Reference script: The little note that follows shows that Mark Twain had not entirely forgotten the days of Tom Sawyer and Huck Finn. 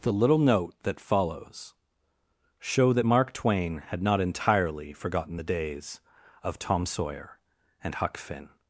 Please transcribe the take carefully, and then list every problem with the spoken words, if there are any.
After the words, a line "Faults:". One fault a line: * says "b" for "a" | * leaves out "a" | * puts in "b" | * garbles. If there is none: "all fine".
The little note that follows show that Mark Twain had not entirely forgotten the days of Tom Sawyer and Huck Finn.
Faults:
* says "show" for "shows"